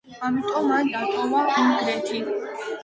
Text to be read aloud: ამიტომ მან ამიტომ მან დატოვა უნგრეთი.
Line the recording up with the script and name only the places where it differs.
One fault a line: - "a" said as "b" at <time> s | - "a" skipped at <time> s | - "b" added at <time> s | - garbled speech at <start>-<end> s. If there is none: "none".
- "ამიტომ მან" skipped at 0.9 s